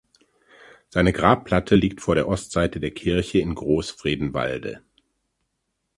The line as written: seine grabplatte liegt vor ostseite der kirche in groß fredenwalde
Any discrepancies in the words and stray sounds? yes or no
yes